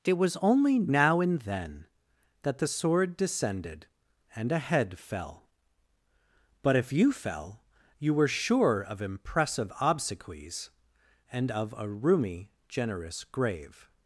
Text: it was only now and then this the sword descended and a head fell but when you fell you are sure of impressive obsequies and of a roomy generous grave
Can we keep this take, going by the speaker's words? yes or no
no